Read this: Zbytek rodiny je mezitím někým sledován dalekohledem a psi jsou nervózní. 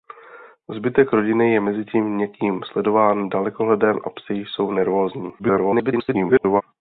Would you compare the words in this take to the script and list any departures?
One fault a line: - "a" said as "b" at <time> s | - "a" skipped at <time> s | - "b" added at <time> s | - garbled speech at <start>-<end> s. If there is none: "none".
- garbled speech at 5.4-6.6 s